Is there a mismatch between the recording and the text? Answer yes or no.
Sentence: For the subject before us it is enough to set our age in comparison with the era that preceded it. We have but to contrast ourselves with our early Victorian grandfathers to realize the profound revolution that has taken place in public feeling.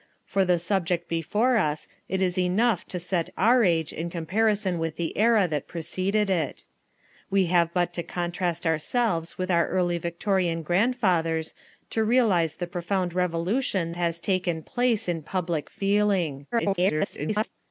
yes